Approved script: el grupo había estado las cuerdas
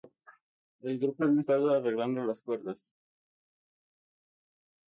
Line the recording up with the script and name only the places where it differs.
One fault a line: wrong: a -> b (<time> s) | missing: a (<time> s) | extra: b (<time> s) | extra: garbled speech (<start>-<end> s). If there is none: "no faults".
extra: arreglando (1.7 s)